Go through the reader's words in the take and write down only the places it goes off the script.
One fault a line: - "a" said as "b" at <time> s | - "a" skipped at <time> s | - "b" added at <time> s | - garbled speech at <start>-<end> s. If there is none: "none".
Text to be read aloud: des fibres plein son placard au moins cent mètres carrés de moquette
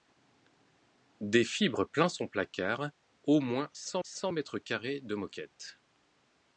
- "cent" added at 4.0 s